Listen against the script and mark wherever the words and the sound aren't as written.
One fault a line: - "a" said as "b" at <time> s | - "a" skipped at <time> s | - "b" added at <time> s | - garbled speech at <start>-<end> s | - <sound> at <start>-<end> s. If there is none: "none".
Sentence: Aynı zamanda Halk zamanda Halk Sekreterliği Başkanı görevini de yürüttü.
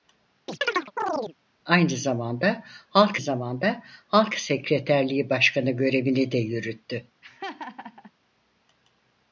- chirp at 0.5-1.3 s
- laugh at 7.2-8.1 s